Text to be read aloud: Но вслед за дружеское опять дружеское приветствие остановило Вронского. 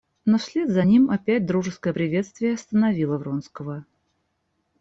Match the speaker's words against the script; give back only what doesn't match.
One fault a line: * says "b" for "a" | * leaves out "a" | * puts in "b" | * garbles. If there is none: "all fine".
* says "ним" for "дружеское"